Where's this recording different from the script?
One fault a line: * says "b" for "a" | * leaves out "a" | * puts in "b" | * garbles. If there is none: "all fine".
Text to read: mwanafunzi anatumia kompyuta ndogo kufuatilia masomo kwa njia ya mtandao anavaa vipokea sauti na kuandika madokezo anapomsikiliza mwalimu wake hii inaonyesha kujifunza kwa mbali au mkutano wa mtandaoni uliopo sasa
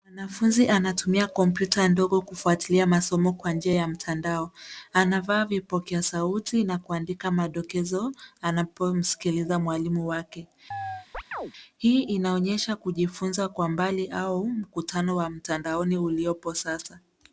all fine